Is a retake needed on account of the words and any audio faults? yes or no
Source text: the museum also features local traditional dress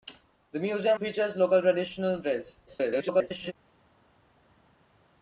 yes